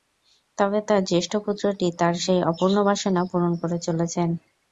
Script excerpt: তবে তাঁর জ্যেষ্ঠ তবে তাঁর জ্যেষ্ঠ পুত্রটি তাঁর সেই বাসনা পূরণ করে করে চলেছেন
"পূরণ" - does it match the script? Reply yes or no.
yes